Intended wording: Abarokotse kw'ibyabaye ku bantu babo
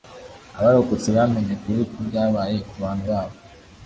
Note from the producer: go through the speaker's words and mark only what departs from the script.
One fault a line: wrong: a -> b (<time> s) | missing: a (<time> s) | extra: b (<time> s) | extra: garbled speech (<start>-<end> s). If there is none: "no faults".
extra: bamenye ukuri (1.2 s)